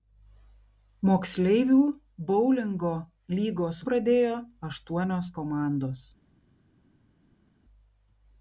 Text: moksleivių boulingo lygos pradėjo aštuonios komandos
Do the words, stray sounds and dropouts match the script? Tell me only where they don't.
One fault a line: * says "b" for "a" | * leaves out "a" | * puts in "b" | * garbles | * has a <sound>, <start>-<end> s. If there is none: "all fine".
all fine